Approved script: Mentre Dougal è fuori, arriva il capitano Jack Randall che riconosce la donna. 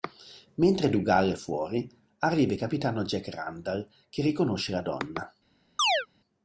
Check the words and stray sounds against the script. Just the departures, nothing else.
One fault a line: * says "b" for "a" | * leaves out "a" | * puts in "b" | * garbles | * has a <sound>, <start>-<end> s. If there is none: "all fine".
* has a chirp, 5.8-6.1 s